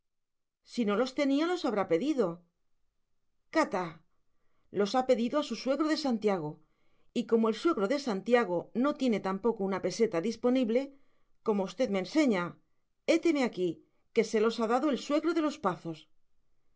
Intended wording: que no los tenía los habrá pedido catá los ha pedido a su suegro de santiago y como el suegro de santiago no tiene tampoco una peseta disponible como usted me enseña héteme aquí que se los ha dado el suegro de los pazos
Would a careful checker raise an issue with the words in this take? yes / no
yes